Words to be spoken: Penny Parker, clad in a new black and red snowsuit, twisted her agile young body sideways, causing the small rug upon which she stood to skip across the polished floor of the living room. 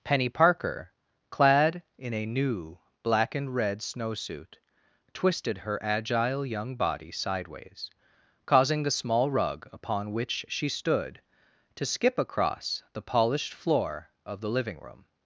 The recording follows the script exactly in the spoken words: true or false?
true